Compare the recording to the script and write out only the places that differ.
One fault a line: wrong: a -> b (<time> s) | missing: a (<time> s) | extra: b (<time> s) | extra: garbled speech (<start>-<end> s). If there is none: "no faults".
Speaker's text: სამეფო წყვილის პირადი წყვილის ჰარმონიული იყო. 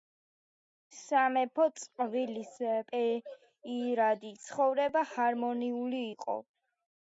wrong: წყვილის -> ცხოვრება (4.5 s)